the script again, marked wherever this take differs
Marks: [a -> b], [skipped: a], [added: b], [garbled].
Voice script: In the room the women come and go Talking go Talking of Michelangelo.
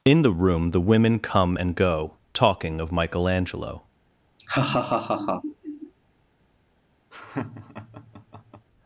In the room the women come and go Talking [skipped: go Talking] of Michelangelo.